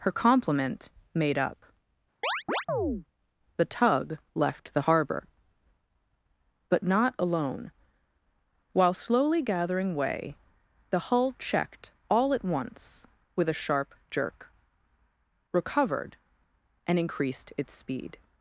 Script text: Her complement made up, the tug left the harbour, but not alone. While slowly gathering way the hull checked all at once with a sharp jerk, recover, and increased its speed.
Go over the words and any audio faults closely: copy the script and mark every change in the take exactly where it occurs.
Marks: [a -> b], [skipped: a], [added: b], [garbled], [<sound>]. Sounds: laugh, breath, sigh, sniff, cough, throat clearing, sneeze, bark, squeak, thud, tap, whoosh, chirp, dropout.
Her complement made up, [chirp] the tug left the harbour, but not alone. While slowly gathering way the hull checked all at once with a sharp jerk, [recover, -> recovered] and increased its speed.